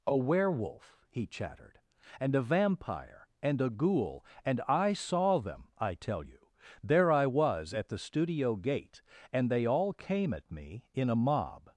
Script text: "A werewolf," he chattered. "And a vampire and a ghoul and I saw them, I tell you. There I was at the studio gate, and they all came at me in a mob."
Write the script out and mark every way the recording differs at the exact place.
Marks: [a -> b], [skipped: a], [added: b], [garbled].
"A werewolf," he chattered. "And a vampire and a ghoul and I saw them, I tell you. There I was at the studio gate, and they all came at me in a mob."